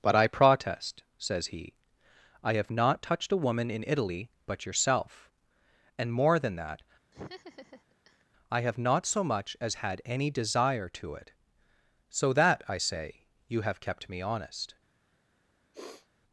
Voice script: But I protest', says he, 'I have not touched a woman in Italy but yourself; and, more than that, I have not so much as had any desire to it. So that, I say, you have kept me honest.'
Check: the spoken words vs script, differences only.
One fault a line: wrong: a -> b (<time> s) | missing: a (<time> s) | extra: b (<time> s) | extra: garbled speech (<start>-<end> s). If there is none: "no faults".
no faults